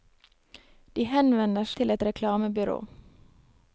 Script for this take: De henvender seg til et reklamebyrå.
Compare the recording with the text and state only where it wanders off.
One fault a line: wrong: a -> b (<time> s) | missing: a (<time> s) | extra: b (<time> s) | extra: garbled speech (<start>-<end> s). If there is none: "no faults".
missing: seg (1.7 s)